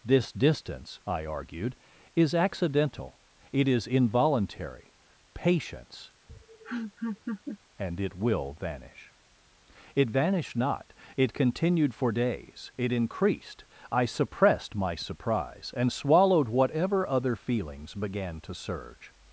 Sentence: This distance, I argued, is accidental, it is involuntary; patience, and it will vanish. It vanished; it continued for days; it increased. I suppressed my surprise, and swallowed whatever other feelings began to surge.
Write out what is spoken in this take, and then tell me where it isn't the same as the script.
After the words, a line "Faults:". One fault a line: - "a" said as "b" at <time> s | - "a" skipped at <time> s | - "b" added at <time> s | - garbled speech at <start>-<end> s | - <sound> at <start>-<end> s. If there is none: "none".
This distance, I argued, is accidental, it is involuntary; patience, and it will vanish. It vanished not; it continued for days; it increased. I suppressed my surprise, and swallowed whatever other feelings began to surge.
Faults:
- laugh at 6.3-7.6 s
- "not" added at 10.6 s